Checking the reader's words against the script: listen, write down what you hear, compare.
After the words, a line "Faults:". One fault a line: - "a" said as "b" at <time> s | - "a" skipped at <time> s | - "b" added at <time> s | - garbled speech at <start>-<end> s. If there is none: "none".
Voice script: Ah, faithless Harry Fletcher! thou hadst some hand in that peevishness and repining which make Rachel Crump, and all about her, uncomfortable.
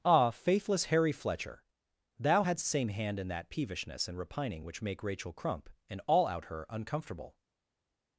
Ah, faithless Harry Fletcher! thou hadst same hand in that peevishness and repining which make Rachel Crump, and all out her, uncomfortable.
Faults:
- "some" said as "same" at 2.6 s
- "about" said as "out" at 6.2 s